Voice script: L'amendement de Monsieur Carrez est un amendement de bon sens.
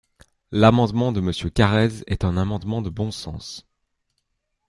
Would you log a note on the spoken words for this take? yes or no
no